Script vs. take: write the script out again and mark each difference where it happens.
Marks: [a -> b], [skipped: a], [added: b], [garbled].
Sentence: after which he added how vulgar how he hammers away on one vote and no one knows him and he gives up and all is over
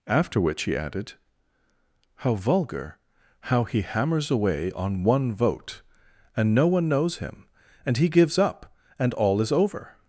after which he added how vulgar how he hammers away on one vote and no one knows him and he gives up and all is over